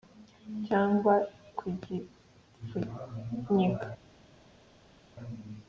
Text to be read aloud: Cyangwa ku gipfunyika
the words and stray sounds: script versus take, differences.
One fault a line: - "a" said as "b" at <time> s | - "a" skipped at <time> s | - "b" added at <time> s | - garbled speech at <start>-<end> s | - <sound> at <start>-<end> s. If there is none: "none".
none